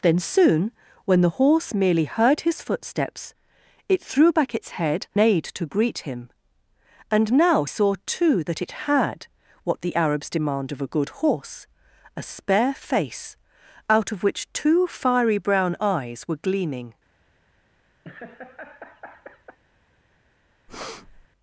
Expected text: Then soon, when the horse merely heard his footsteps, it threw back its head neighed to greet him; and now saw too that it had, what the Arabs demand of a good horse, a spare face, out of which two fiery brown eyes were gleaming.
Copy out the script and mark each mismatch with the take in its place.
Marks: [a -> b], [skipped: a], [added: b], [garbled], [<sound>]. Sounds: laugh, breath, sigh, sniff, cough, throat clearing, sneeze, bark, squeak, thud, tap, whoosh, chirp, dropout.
Then soon, when the horse merely heard his footsteps, it threw back its head neighed to greet him; and now saw too that it had, what the Arabs demand of a good horse, a spare face, out of which two fiery brown eyes were gleaming. [laugh] [breath]